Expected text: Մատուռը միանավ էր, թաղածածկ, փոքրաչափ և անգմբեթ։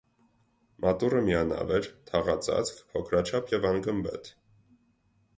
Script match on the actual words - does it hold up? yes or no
yes